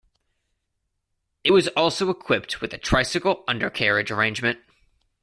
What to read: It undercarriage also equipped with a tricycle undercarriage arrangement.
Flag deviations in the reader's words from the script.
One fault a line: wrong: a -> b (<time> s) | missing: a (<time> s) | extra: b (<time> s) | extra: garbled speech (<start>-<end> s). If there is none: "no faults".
wrong: undercarriage -> was (1.5 s)